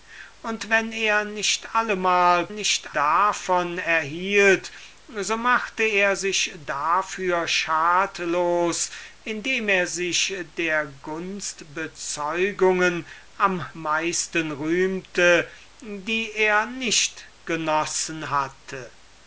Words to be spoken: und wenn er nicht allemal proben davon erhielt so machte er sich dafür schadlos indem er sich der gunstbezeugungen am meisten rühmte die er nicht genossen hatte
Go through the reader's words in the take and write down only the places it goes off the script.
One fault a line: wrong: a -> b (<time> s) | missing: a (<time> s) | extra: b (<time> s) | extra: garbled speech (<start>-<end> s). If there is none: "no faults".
wrong: proben -> nicht (2.5 s)